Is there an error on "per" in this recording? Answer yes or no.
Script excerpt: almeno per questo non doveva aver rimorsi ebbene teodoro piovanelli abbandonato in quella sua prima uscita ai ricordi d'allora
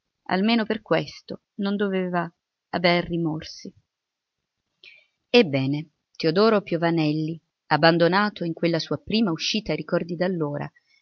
no